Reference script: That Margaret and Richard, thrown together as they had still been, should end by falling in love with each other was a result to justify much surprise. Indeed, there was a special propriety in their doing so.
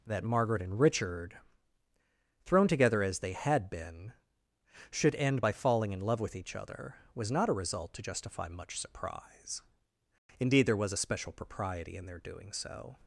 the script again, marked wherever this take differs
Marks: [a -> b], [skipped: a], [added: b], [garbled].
That Margaret and Richard, thrown together as they had [skipped: still] been, should end by falling in love with each other was [added: not] a result to justify much surprise. Indeed, there was a special propriety in their doing so.